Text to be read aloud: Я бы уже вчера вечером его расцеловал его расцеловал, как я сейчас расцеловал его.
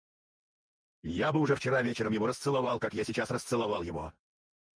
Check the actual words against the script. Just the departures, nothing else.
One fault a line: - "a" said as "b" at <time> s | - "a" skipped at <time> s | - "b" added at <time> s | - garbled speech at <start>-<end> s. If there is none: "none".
- "его расцеловал" skipped at 2.8 s